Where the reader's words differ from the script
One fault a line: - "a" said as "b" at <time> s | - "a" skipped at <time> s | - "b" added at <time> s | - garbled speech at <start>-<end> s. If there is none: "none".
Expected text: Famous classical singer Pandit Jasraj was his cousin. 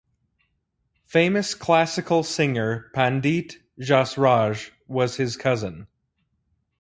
none